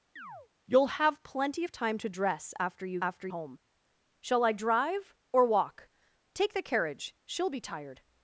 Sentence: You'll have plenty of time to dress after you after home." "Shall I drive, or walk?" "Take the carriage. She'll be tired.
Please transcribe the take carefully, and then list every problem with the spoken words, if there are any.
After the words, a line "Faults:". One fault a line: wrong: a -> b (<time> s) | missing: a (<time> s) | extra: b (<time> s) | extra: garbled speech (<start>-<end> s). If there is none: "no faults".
You'll have plenty of time to dress after you after home." "Shall I drive, or walk?" "Take the carriage. She'll be tired.
Faults:
no faults